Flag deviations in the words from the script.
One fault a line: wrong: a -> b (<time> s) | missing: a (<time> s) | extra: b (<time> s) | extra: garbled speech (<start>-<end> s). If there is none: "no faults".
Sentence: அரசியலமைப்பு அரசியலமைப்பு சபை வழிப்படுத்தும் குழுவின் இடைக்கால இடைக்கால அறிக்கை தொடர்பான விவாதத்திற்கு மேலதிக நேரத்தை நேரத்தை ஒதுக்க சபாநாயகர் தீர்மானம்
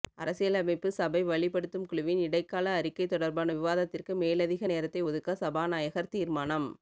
missing: அரசியலமைப்பு (0.9 s)
missing: இடைக்கால (2.7 s)
missing: நேரத்தை (5.0 s)